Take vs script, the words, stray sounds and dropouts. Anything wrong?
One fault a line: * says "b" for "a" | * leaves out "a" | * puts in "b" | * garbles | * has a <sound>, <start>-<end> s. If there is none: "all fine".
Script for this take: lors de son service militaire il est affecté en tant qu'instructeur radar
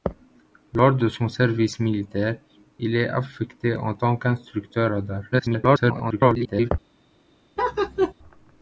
* garbles
* has a laugh, 7.6-8.1 s